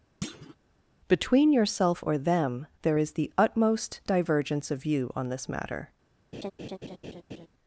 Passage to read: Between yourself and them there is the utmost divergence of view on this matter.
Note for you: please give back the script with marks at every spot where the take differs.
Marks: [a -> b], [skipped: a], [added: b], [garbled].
Between yourself [and -> or] them there is the utmost divergence of view on this matter.